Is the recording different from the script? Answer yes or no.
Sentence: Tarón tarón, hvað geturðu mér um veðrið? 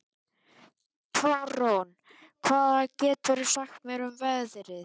yes